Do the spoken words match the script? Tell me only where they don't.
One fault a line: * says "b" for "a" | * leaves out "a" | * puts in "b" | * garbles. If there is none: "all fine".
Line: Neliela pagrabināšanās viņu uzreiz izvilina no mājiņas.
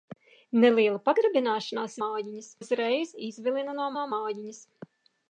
* says "mājiņas" for "viņu"
* puts in "no"